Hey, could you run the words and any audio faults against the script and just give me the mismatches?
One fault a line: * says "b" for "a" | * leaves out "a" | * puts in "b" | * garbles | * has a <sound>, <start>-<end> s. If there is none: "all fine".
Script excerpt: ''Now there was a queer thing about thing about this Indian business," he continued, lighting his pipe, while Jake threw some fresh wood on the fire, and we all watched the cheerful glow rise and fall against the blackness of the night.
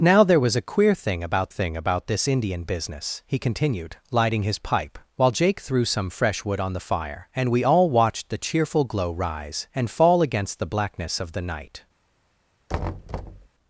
* has a thud, 12.7-13.5 s